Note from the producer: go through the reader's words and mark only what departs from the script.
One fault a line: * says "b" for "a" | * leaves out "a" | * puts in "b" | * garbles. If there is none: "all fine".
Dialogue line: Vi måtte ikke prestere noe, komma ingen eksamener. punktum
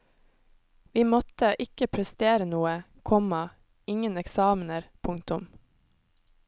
all fine